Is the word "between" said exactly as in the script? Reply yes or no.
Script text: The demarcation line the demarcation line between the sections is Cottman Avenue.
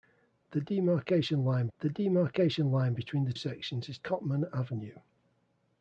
yes